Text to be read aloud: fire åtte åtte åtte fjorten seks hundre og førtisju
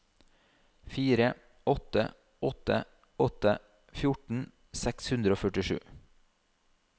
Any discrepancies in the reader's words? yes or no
no